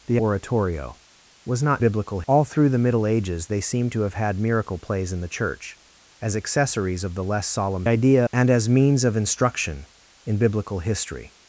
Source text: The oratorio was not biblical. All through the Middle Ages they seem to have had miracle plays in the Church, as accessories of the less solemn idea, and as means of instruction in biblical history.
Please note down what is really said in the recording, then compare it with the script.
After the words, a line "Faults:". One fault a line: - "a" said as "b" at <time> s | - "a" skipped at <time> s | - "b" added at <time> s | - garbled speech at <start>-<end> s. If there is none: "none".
The oratorio was not biblical. All through the Middle Ages they seem to have had miracle plays in the Church, as accessories of the less solemn idea, and as means of instruction in biblical history.
Faults:
none